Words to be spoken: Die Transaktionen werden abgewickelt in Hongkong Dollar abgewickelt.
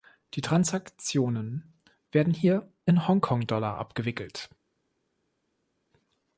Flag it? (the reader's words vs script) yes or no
yes